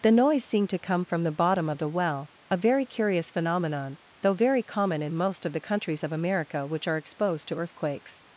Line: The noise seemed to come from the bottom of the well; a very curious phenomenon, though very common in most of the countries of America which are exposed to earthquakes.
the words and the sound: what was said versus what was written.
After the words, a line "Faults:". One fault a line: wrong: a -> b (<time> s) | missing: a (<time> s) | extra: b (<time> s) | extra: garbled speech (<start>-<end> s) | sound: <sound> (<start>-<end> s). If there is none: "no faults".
The noise seemed to come from the bottom of the well; a very curious phenomenon, though very common in most of the countries of America which are exposed to earthquakes.
Faults:
no faults